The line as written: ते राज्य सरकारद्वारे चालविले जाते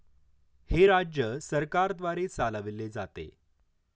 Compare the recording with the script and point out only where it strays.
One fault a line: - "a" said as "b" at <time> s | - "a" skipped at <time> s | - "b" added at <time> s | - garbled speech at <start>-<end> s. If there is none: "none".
- "ते" said as "हे" at 0.7 s